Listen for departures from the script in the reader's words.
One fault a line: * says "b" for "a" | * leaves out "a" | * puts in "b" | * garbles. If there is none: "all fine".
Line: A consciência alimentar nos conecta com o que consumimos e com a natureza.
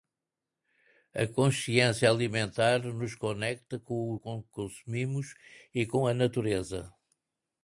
all fine